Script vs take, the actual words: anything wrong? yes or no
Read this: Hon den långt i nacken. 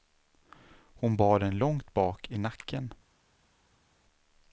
yes